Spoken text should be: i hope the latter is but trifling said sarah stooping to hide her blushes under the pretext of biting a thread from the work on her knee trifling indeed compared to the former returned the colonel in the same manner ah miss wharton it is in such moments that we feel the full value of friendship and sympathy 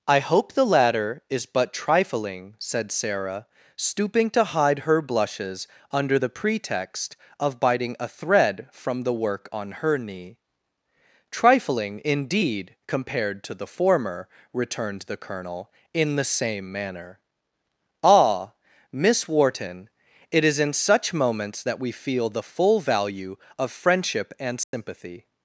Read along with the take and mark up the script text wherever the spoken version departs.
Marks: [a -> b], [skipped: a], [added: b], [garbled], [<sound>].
i hope the latter is but trifling said sarah stooping to hide her blushes under the pretext of biting a thread from the work on her knee trifling indeed compared to the former returned the colonel in the same manner ah miss wharton it is in such moments that we feel the full value of friendship and sympathy [dropout]